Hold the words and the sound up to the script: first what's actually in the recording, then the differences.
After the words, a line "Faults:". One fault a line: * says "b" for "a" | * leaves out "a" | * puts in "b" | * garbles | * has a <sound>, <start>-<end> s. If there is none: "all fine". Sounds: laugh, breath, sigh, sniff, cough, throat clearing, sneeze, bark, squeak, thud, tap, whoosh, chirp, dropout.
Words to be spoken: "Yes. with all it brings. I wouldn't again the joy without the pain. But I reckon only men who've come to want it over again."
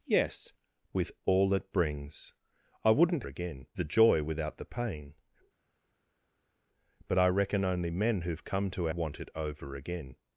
"Yes. with all it brings. I wouldn't again the joy without the pain. But I reckon only men who've come to want it over again."
Faults:
all fine